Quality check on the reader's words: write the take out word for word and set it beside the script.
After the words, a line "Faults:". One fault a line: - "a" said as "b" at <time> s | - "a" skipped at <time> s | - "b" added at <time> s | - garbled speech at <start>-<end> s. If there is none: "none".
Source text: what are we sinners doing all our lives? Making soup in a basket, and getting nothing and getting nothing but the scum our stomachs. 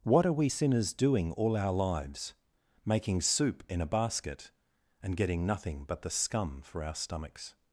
what are we sinners doing all our lives? Making soup in a basket, and getting nothing but the scum for our stomachs.
Faults:
- "and getting nothing" skipped at 5.8 s
- "for" added at 6.6 s